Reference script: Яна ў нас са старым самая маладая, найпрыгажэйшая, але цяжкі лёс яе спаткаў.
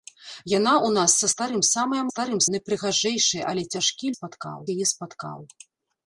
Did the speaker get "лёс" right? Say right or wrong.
wrong